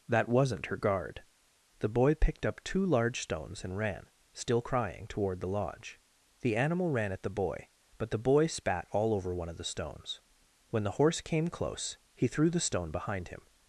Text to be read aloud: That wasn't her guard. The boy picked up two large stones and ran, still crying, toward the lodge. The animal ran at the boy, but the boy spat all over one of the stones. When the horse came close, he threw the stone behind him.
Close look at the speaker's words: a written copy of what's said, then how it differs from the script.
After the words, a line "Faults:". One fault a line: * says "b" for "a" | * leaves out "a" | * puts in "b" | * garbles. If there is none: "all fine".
That wasn't her guard. The boy picked up two large stones and ran, still crying, toward the lodge. The animal ran at the boy, but the boy spat all over one of the stones. When the horse came close, he threw the stone behind him.
Faults:
all fine